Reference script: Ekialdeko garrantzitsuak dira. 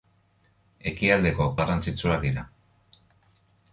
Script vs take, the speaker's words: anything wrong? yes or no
no